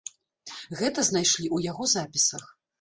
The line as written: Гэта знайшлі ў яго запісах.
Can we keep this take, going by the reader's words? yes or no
yes